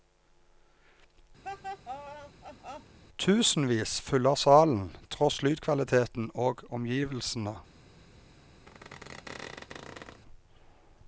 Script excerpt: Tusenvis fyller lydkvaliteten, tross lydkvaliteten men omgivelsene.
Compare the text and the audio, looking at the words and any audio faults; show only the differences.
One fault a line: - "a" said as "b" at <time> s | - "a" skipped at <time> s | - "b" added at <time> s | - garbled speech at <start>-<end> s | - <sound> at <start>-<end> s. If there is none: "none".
- laugh at 1.4-3.0 s
- "lydkvaliteten" said as "salen" at 4.3 s
- "men" said as "og" at 6.3 s
- squeak at 8.7-10.2 s